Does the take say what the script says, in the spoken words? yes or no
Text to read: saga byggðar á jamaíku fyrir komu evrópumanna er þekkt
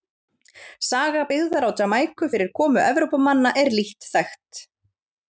no